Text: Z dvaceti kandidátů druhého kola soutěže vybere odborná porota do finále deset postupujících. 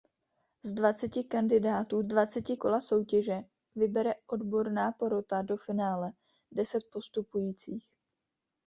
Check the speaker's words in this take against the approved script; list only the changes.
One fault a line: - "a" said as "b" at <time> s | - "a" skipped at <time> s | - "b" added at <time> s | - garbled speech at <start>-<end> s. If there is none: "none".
- "druhého" said as "dvaceti" at 2.1 s